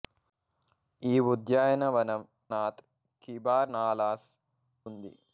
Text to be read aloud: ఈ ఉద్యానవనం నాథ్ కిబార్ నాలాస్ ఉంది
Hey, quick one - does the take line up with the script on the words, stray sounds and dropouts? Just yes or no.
yes